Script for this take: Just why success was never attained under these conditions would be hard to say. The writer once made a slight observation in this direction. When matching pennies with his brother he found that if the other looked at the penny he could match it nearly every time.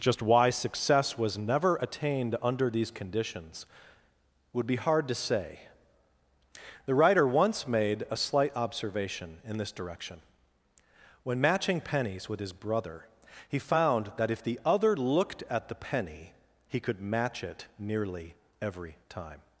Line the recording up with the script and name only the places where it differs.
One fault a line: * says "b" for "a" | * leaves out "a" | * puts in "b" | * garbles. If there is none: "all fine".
all fine